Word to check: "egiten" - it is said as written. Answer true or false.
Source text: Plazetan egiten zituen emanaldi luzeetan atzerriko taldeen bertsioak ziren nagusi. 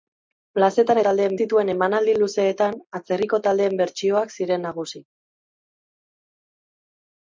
false